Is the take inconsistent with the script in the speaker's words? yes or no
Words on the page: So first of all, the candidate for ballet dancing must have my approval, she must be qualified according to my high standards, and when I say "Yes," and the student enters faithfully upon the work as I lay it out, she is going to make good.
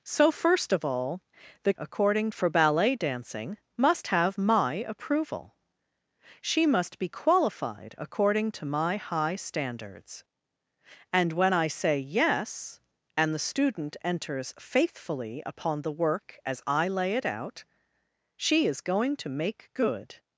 yes